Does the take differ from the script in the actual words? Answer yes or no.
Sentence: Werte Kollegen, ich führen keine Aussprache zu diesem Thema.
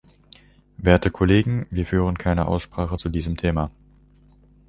yes